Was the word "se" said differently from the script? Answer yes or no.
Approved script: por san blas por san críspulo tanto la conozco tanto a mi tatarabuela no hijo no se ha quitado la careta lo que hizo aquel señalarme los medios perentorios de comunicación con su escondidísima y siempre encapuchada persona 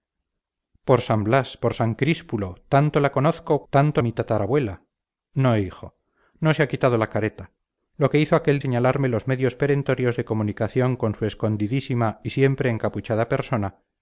no